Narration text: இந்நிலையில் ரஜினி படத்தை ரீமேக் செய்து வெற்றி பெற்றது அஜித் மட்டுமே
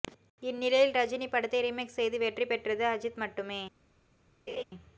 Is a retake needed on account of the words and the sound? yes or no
yes